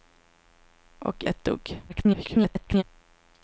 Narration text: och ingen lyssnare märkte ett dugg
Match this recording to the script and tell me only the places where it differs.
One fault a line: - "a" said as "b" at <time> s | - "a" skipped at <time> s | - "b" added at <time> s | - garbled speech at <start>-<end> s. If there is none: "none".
- "ingen lyssnare märkte" skipped at 1.2 s
- garbled speech at 1.9-2.8 s